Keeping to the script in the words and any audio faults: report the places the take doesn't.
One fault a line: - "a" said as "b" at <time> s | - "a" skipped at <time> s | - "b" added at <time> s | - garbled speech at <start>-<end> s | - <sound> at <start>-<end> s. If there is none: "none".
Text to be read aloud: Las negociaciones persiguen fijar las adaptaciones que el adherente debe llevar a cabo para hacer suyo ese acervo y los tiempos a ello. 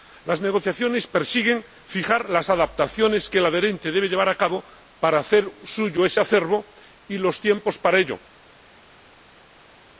- "a" said as "para" at 7.8 s